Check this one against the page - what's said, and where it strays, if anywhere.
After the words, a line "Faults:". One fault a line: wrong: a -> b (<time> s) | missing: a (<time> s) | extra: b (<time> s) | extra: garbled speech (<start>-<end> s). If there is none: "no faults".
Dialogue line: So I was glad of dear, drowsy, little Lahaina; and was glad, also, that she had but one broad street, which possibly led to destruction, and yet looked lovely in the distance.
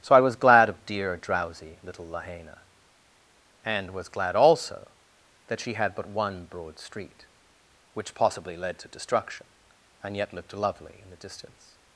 So I was glad of dear, drowsy, little Lahaina; and was glad, also, that she had but one broad street, which possibly led to destruction, and yet looked lovely in the distance.
Faults:
no faults